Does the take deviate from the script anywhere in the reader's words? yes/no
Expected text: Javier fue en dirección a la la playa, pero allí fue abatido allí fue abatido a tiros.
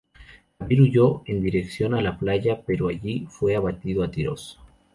yes